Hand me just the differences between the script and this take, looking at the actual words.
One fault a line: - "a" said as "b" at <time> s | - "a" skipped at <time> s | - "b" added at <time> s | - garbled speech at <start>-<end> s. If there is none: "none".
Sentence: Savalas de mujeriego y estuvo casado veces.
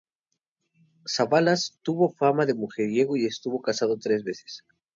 - "tuvo fama" added at 1.8 s
- "tres" added at 4.0 s